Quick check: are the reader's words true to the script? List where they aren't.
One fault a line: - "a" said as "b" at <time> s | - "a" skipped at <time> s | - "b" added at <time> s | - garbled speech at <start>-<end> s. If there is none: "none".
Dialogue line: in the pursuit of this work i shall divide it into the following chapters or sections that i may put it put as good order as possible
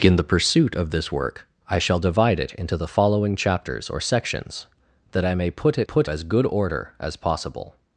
none